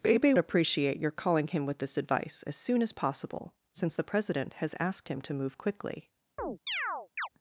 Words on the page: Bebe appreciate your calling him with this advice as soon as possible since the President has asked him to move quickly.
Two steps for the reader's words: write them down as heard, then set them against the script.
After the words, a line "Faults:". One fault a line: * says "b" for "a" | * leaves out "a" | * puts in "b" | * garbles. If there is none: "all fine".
Bebe appreciate your calling him with this advice as soon as possible since the President has asked him to move quickly.
Faults:
all fine